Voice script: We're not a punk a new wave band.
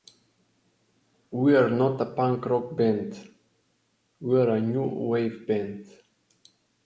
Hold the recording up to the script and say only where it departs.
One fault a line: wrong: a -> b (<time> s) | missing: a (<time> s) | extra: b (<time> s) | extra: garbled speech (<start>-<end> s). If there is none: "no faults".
extra: rock band we're (2.5 s)